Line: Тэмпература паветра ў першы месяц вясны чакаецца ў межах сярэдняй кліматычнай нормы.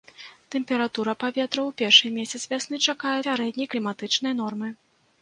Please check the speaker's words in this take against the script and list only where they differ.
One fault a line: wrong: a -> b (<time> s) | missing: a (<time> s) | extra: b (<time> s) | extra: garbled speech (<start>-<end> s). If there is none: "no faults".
missing: ў межах (3.2 s)